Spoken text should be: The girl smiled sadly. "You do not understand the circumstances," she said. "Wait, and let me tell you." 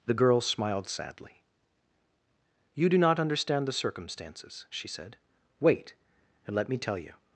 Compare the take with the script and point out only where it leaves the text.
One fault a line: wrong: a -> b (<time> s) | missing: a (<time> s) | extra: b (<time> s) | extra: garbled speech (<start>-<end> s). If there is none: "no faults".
no faults